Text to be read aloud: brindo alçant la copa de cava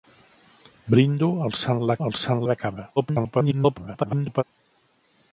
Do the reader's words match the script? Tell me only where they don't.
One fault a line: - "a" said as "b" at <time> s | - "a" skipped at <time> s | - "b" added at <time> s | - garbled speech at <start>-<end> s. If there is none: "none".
- "copa" said as "alçant" at 2.1 s
- garbled speech at 3.0-4.4 s